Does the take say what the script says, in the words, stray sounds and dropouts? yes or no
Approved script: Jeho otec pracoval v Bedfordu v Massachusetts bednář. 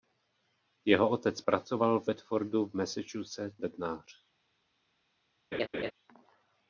no